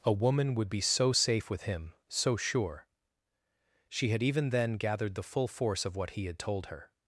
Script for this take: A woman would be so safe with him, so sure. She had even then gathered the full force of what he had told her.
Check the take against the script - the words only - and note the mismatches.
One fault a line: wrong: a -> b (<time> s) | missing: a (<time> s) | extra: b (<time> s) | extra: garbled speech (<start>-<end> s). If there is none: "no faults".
no faults